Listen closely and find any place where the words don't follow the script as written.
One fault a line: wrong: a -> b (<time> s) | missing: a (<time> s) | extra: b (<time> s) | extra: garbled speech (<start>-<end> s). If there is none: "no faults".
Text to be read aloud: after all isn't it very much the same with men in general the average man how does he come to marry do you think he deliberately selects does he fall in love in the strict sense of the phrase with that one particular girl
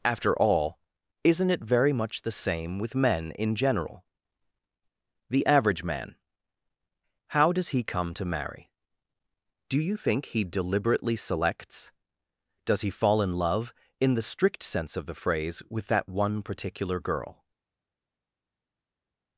no faults